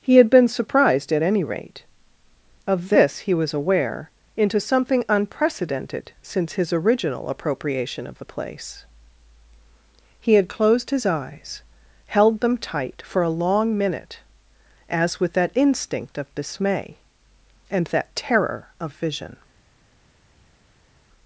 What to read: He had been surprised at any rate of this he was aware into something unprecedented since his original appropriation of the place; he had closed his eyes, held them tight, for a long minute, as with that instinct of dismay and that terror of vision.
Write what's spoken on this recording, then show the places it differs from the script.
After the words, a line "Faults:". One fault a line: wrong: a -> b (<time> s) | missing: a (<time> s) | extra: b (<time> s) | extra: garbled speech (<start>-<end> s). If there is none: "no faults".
He had been surprised at any rate of this he was aware into something unprecedented since his original appropriation of the place; he had closed his eyes, held them tight, for a long minute, as with that instinct of dismay and that terror of vision.
Faults:
no faults